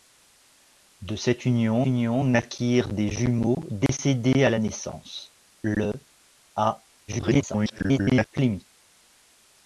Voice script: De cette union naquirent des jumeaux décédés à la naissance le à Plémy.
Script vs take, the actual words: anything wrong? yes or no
yes